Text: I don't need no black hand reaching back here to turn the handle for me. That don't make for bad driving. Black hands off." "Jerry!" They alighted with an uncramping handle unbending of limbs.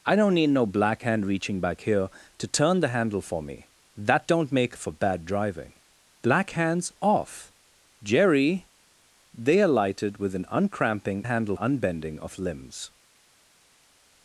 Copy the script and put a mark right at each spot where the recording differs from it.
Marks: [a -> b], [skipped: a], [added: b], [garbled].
I don't need no black hand reaching back here to turn the handle for me. That don't make for bad driving. Black hands off." "Jerry!" They alighted with an uncramping handle unbending of limbs.